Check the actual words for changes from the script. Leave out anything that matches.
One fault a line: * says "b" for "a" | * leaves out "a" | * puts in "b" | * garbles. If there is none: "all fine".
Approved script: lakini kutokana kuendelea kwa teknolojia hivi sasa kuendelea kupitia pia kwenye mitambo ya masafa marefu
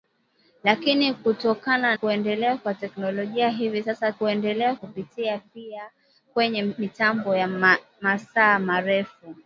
all fine